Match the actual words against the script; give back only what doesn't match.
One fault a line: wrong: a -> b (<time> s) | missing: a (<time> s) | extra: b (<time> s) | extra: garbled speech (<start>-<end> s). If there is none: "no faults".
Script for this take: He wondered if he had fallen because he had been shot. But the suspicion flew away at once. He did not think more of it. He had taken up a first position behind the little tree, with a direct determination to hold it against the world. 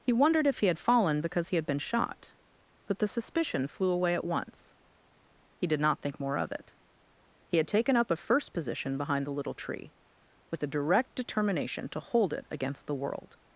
no faults